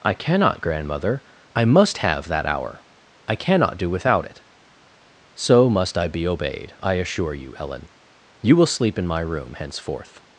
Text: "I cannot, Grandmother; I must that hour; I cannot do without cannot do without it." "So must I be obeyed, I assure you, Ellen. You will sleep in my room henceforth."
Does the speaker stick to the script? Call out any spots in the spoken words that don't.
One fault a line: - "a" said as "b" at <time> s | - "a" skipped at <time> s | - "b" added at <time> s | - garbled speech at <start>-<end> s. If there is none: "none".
- "have" added at 2.0 s
- "cannot do without" skipped at 4.2 s